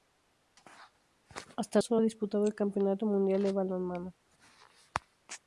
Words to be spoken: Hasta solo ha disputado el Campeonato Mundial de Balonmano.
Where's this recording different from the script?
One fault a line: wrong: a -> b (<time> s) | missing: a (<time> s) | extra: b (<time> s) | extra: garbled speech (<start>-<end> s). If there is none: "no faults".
no faults